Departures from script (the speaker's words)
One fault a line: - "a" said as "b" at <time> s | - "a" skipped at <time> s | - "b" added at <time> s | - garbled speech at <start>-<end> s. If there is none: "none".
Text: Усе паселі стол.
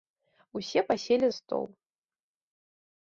none